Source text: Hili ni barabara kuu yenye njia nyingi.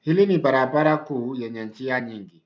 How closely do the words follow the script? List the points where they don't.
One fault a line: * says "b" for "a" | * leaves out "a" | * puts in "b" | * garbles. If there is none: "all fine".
all fine